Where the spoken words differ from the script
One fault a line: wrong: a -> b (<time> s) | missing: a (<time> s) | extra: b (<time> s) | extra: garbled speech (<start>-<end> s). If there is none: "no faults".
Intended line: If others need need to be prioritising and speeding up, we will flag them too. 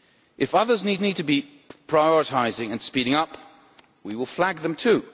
no faults